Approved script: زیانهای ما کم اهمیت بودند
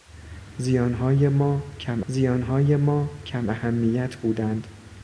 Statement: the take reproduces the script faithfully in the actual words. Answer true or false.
false